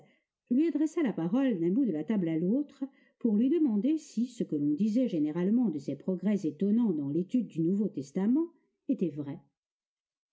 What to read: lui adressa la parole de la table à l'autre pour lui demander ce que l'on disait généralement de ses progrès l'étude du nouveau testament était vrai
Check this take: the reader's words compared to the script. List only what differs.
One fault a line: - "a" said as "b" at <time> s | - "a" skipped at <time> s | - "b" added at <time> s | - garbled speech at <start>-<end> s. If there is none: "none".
- "d'un bout" added at 1.6 s
- "si" added at 4.0 s
- "étonnants dans" added at 6.5 s